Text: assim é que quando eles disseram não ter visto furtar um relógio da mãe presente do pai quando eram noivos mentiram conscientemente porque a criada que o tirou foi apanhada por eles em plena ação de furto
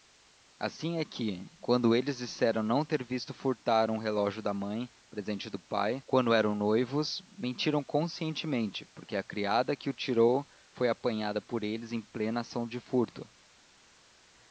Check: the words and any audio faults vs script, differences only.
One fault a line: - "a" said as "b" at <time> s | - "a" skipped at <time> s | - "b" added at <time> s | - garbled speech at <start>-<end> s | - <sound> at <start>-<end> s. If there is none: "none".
none